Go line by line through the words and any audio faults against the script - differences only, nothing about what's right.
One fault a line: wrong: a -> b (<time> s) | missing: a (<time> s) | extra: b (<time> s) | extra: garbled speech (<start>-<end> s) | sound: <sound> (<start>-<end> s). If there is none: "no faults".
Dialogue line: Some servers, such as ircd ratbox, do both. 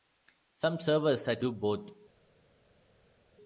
missing: as ircd ratbox (1.4 s)